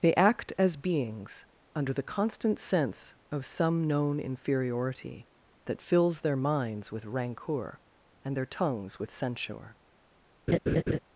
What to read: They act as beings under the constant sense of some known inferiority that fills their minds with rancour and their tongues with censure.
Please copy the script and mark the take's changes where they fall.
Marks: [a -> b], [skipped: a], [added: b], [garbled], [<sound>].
They act as beings under the constant sense of some known inferiority that fills their minds with rancour and their tongues with censure. [laugh]